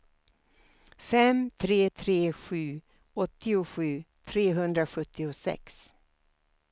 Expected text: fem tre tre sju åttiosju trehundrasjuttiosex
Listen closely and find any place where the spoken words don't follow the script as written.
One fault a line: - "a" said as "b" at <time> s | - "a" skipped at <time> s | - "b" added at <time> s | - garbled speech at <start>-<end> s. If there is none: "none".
none